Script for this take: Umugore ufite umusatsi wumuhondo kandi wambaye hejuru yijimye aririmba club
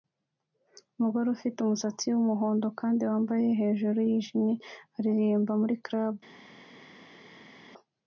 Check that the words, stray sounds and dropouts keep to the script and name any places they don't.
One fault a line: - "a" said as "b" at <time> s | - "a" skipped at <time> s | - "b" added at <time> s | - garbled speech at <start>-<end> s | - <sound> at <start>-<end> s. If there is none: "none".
- "muri" added at 5.6 s